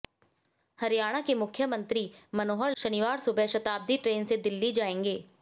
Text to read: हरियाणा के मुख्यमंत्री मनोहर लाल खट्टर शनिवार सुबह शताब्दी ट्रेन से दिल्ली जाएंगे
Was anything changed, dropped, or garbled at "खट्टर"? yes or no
yes